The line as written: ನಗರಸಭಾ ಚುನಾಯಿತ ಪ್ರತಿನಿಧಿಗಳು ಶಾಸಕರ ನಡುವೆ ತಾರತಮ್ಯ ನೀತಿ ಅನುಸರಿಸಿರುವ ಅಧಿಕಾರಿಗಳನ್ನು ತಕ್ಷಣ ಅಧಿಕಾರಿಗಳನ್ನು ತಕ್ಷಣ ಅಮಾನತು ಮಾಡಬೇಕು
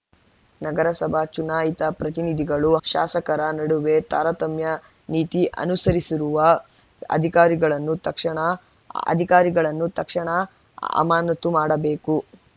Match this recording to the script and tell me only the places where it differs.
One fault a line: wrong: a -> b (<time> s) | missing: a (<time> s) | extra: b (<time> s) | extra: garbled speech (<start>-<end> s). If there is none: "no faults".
no faults